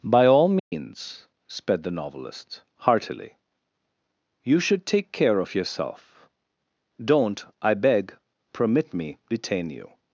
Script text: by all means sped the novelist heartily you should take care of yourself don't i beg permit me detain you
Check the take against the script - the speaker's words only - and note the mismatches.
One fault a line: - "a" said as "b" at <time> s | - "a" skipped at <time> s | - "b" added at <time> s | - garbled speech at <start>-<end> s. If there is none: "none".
none